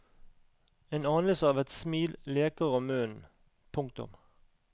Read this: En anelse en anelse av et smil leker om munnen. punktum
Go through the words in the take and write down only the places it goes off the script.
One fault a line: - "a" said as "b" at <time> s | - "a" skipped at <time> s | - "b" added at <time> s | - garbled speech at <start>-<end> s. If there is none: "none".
- "en anelse" skipped at 1.5 s